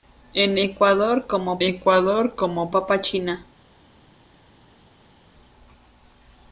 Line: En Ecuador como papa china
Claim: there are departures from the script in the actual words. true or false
true